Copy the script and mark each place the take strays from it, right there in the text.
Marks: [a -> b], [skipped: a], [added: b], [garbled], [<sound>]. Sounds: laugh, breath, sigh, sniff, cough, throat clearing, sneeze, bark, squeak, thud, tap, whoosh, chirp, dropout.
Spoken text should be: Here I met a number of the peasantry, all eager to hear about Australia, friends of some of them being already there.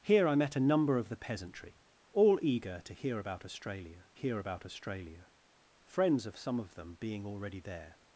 Here I met a number of the peasantry, all eager to hear about Australia, [added: hear about Australia] friends of some of them being already there.